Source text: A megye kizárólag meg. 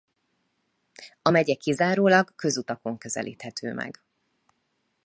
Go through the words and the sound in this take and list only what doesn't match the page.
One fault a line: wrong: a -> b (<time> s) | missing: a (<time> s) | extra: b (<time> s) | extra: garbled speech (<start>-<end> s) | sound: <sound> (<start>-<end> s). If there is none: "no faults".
extra: közutakon közelíthető (2.4 s)